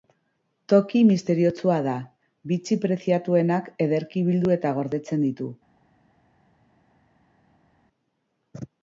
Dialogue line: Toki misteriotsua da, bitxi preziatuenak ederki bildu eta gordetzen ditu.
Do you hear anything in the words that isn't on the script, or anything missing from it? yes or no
no